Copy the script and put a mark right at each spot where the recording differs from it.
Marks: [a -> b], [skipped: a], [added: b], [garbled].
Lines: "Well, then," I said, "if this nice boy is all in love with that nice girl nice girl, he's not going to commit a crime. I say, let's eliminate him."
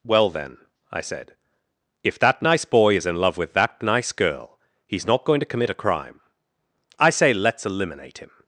"Well, then," I said, "if [this -> that] nice boy is [skipped: all] in love with that nice girl [skipped: nice girl,] he's not going to commit a crime. I say, let's eliminate him."